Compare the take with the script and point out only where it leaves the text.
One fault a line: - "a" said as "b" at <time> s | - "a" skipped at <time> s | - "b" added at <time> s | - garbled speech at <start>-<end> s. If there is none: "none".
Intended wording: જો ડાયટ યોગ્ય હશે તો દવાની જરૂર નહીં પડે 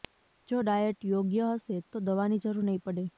none